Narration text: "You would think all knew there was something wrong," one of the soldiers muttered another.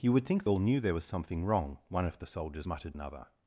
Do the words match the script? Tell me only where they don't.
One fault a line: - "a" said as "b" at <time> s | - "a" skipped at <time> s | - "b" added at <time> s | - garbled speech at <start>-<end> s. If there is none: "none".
none